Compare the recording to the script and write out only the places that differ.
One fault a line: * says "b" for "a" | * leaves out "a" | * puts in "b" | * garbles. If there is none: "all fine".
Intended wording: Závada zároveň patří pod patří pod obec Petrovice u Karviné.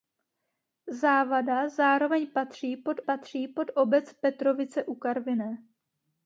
all fine